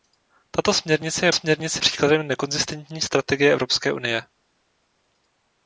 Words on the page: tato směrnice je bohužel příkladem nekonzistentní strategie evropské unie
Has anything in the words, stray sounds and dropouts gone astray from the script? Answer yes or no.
yes